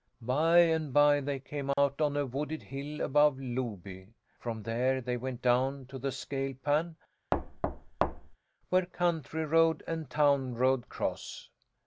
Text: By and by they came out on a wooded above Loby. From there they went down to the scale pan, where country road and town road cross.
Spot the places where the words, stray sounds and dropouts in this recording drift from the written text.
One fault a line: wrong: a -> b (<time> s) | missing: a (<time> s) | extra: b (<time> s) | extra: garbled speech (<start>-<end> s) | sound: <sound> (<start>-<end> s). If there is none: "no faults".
sound: dropout (1.7-1.8 s)
extra: hill (2.6 s)
sound: thud (7.3-8.4 s)